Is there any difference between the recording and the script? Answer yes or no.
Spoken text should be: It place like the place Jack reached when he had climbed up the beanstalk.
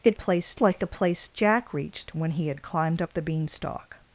no